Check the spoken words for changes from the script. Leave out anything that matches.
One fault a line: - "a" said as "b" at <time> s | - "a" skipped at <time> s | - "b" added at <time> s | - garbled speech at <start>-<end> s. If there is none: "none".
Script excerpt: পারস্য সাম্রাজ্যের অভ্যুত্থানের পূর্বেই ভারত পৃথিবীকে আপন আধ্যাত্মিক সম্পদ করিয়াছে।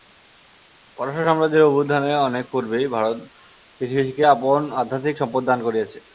- "অনেক" added at 2.3 s
- "দান" added at 5.4 s